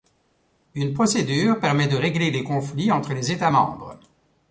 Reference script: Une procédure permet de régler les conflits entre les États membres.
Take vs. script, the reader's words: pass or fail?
pass